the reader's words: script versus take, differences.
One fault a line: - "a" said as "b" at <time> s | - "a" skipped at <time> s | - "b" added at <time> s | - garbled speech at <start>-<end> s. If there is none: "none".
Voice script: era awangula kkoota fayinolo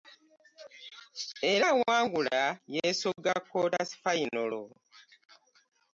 - "yeesogga" added at 2.8 s